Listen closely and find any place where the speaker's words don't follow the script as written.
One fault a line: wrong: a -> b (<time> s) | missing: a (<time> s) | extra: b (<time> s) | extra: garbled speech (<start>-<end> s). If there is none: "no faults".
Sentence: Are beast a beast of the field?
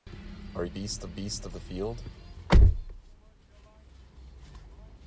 no faults